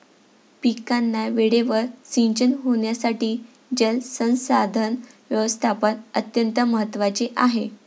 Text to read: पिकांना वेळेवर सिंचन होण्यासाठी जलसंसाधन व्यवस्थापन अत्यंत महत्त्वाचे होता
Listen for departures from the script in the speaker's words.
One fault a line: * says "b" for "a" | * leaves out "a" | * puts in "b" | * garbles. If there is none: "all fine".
* says "आहे" for "होता"